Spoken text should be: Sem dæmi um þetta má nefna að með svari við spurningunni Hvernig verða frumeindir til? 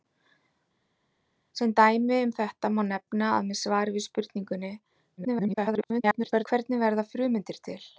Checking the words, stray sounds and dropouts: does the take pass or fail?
fail